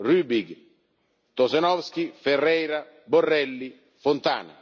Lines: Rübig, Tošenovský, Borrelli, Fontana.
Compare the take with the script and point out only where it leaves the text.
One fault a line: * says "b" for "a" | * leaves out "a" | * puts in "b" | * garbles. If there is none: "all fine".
* puts in "Ferreira"